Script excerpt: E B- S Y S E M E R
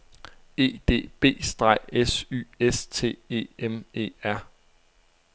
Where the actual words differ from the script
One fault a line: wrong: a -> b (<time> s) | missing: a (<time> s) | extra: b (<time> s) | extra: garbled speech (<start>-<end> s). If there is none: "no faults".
extra: D (0.9 s)
extra: T (2.9 s)